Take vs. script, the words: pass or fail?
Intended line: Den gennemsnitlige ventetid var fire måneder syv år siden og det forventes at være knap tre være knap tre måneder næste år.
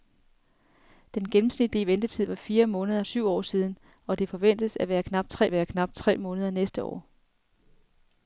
pass